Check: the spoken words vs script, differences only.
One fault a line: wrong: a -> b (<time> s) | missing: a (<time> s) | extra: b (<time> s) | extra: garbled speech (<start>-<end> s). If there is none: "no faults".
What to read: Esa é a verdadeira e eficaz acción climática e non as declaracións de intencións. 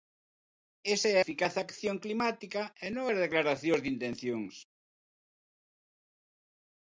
missing: a verdadeira e (1.2 s)